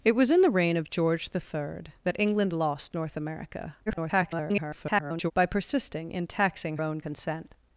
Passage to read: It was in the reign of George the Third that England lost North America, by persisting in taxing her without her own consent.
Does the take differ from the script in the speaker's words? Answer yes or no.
yes